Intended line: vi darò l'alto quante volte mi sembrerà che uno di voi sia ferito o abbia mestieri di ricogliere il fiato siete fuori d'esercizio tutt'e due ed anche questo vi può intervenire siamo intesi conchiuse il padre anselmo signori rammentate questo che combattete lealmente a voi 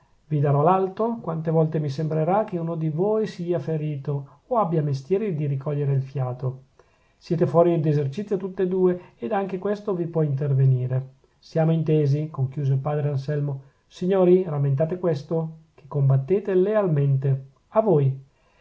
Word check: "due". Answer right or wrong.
right